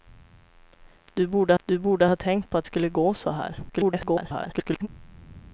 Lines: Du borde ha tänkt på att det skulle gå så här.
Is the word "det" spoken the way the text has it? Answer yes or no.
no